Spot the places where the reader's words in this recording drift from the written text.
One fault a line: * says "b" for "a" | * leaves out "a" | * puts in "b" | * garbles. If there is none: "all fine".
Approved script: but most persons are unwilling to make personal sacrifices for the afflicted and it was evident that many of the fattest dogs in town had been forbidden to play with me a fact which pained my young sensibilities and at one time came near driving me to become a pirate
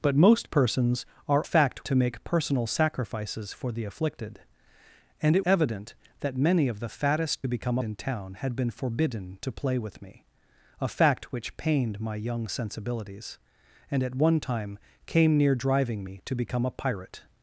* says "fact" for "unwilling"
* leaves out "was"
* says "become" for "dogs"